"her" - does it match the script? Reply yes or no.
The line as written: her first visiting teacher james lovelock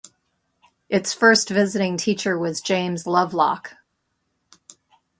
no